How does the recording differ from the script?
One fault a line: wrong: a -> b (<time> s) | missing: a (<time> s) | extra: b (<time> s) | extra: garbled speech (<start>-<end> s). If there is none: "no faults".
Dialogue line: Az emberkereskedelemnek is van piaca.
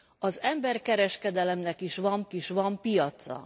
extra: is van (2.3 s)